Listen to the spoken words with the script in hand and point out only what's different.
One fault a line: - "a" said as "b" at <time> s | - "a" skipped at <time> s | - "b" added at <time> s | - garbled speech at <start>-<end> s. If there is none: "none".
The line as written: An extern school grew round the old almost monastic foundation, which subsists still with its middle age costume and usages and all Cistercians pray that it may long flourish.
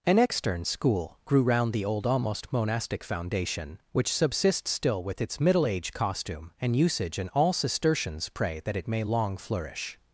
- "usages" said as "usage" at 6.8 s